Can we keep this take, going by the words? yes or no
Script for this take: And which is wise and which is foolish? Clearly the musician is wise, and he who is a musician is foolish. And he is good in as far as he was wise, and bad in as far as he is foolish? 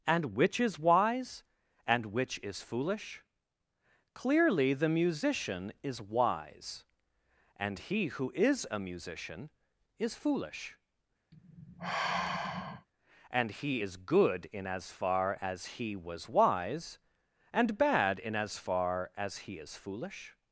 yes